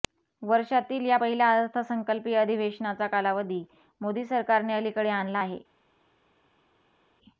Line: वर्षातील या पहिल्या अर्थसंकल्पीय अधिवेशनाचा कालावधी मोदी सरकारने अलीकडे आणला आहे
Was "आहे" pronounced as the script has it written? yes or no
yes